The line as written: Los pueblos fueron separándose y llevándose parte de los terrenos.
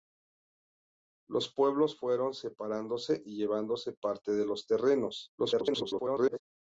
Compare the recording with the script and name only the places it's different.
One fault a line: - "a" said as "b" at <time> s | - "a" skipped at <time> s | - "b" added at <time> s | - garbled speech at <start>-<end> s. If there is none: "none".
- garbled speech at 5.4-6.4 s